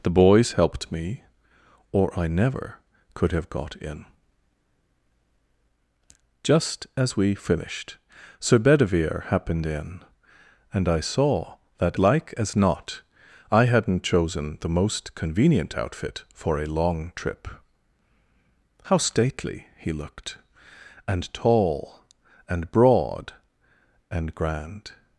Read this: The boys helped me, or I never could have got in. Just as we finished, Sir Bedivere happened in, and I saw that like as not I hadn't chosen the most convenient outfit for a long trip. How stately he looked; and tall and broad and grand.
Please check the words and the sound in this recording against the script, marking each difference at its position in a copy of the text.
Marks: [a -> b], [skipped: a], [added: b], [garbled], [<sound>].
The boys helped me, or I never could have got in. Just as we finished, Sir Bedivere happened in, and I saw that like as not I hadn't chosen the most convenient outfit for a long trip. How stately he looked; and tall and broad and grand.